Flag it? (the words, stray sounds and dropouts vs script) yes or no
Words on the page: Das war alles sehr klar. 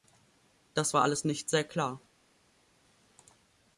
yes